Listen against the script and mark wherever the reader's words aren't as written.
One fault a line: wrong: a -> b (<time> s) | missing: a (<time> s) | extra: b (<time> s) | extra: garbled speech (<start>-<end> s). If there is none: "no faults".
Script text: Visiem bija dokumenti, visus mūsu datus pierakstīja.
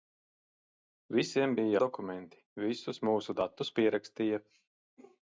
no faults